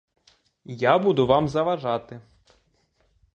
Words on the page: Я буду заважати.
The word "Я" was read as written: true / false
true